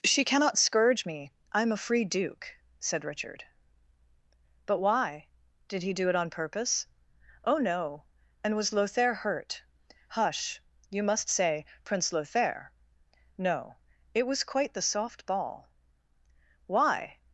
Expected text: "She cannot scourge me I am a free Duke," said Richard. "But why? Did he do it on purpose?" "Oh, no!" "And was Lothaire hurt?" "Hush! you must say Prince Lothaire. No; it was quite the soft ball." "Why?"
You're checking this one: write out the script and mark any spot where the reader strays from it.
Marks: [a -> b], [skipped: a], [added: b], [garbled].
"She cannot scourge me I am a free Duke," said Richard. "But why? Did he do it on purpose?" "Oh, no!" "And was Lothaire hurt?" "Hush! you must say Prince Lothaire. No; it was quite the soft ball." "Why?"